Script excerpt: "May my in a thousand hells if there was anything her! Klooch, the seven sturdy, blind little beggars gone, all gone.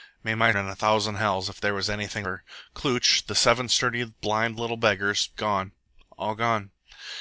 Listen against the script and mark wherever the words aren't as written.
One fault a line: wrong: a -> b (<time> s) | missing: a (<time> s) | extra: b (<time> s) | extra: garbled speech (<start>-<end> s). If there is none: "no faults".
no faults